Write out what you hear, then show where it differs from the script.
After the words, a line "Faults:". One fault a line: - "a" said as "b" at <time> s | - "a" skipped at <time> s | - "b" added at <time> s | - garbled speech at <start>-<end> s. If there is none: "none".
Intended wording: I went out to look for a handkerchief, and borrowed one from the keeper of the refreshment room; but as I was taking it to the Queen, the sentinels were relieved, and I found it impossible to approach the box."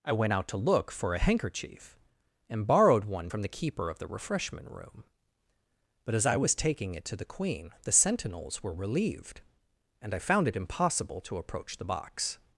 I went out to look for a handkerchief, and borrowed one from the keeper of the refreshment room; but as I was taking it to the Queen, the sentinels were relieved, and I found it impossible to approach the box."
Faults:
none